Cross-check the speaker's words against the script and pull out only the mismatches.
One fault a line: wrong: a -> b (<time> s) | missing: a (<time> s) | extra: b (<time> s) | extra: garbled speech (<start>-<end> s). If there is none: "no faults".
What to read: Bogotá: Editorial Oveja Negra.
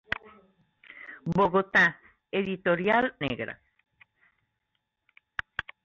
missing: Oveja (3.1 s)